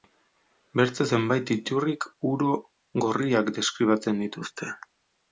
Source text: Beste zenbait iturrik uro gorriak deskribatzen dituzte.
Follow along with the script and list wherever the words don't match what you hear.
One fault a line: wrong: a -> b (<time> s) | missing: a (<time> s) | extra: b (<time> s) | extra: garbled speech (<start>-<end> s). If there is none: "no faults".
no faults